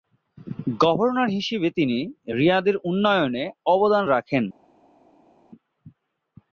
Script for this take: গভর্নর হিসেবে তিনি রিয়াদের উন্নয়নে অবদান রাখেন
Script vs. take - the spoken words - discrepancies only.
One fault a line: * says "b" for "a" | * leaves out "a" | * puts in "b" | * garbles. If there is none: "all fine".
all fine